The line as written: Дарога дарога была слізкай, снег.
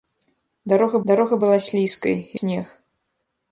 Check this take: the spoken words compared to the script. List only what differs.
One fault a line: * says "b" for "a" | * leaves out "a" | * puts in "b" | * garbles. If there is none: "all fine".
all fine